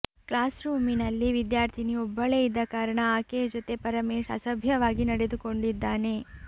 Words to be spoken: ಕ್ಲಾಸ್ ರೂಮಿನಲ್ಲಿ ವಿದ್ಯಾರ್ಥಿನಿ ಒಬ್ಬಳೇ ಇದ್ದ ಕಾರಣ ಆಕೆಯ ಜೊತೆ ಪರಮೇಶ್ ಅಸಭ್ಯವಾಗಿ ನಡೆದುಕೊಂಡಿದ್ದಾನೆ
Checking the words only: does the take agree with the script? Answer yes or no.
yes